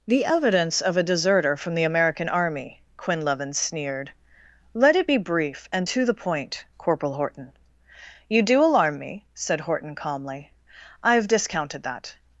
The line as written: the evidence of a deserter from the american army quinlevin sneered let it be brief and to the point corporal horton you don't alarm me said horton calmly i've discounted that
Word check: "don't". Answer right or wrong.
wrong